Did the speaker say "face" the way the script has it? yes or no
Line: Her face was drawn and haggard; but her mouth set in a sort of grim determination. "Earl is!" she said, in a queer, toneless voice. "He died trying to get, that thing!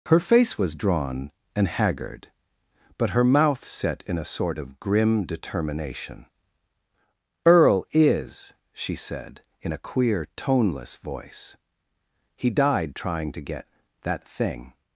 yes